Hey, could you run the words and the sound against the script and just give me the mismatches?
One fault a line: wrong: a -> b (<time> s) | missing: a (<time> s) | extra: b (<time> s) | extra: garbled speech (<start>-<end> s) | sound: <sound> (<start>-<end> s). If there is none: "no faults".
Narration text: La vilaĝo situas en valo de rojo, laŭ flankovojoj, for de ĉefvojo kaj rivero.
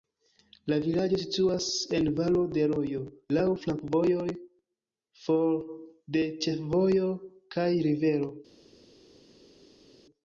no faults